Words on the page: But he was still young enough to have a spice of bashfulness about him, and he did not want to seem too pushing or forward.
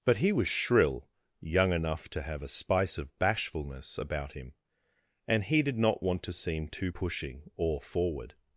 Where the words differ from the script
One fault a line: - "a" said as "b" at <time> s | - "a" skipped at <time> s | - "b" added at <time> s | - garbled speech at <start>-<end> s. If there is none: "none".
- "still" said as "shrill" at 0.5 s